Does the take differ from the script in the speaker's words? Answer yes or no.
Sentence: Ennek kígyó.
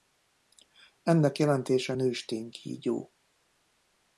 yes